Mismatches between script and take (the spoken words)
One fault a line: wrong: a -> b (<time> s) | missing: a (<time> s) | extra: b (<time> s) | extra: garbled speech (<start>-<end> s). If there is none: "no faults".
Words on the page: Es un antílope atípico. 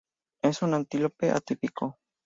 no faults